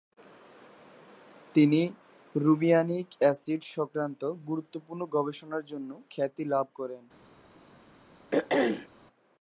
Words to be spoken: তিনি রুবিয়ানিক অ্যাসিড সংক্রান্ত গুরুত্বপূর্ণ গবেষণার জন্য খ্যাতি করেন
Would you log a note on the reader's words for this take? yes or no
yes